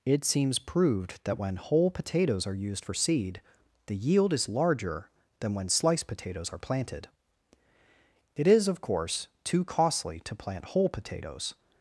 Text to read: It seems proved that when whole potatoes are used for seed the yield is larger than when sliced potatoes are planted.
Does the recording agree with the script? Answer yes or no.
no